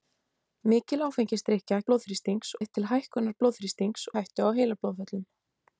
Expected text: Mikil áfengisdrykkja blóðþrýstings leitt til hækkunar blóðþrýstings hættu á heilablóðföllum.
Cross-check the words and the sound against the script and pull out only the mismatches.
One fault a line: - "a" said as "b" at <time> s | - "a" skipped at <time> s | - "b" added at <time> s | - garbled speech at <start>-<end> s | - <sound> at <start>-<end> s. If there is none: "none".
none